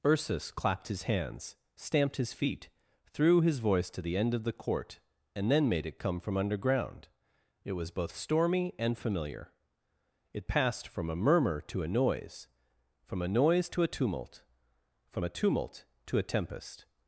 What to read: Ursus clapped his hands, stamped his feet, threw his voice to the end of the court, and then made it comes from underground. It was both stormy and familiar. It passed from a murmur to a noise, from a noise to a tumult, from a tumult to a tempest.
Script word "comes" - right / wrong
wrong